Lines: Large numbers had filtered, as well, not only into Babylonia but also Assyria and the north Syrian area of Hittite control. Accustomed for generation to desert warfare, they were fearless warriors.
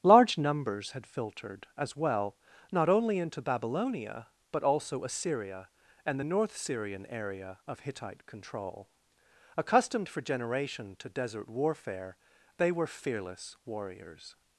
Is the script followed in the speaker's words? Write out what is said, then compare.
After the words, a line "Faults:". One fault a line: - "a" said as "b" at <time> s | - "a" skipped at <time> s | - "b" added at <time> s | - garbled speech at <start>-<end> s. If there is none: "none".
Large numbers had filtered, as well, not only into Babylonia but also Assyria and the north Syrian area of Hittite control. Accustomed for generation to desert warfare, they were fearless warriors.
Faults:
none